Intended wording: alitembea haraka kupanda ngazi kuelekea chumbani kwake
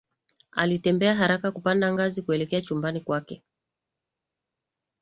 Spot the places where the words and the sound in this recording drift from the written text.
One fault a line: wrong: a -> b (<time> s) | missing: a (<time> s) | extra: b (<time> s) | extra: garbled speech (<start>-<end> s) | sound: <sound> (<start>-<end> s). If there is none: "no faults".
no faults